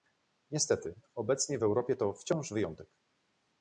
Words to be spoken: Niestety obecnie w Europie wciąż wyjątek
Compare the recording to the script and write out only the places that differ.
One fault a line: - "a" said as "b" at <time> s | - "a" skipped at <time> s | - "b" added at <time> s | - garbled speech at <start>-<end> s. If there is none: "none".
- "to" added at 2.0 s